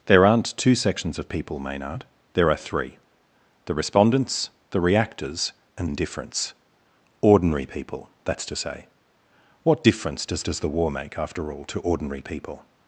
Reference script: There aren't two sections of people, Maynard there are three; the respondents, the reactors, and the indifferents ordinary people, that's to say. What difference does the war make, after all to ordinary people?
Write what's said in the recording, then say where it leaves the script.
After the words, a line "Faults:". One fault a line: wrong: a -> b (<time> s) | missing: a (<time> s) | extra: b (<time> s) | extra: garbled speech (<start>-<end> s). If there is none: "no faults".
There aren't two sections of people, Maynard there are three; the respondents, the reactors, and indifferents ordinary people, that's to say. What difference does does the war make, after all to ordinary people?
Faults:
missing: the (5.9 s)
extra: does (10.4 s)